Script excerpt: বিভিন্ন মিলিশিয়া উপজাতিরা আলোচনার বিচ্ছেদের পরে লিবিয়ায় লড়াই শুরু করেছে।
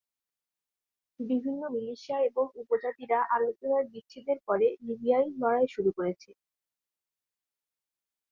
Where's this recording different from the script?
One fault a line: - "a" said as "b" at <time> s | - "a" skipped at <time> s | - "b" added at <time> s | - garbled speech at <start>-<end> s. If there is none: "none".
- "এবং" added at 2.3 s